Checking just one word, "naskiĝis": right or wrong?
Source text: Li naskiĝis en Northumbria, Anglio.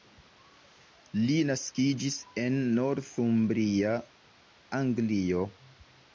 right